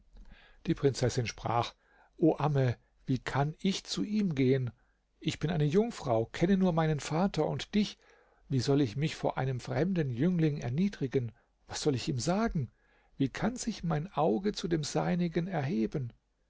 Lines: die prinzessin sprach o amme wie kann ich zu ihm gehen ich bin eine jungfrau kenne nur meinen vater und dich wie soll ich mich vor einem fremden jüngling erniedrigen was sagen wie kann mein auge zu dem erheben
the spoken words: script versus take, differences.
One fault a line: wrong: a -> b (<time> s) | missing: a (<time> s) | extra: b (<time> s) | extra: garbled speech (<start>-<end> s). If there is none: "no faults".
extra: soll ich ihm (11.8 s)
extra: sich (13.6 s)
extra: seinigen (14.8 s)